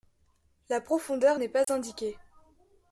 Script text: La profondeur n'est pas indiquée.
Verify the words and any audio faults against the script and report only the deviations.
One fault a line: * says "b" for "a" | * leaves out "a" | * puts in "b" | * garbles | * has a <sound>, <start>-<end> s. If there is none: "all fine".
* has a dropout, 1.6-1.7 s